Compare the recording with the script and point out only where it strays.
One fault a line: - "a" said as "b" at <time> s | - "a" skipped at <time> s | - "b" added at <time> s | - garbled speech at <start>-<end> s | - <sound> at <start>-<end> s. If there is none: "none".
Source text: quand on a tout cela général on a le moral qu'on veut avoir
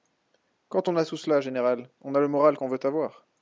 none